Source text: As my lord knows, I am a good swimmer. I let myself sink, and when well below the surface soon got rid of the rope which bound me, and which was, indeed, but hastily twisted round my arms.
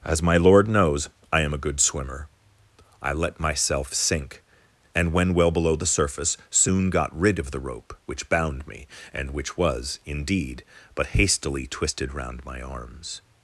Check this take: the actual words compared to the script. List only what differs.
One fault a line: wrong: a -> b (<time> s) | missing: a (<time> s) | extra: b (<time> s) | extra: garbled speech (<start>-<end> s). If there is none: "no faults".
no faults